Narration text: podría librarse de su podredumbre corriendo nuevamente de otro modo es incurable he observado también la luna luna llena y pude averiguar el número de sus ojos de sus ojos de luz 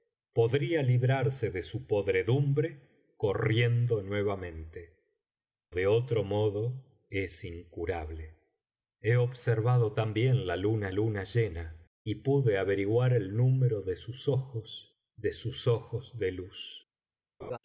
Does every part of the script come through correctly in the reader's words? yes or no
yes